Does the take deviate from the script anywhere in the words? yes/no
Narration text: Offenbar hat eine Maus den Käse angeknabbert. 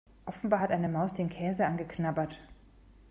no